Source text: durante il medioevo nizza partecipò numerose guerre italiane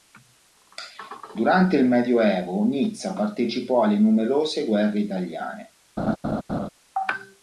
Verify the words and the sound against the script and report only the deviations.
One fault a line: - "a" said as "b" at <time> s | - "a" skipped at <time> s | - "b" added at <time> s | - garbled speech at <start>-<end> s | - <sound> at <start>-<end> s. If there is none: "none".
- "alle" added at 3.8 s
- laugh at 6.0-6.7 s